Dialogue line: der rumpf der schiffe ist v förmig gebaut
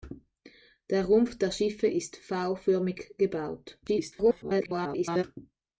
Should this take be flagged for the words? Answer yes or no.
yes